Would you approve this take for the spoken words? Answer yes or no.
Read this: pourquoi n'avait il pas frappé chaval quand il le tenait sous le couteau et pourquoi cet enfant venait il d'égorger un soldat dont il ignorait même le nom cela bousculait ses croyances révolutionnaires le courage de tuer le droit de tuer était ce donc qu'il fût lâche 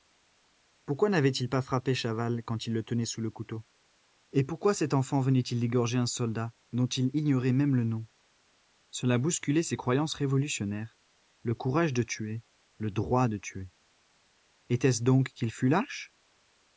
yes